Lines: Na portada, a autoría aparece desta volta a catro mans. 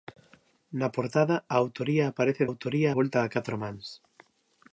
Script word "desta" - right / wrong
wrong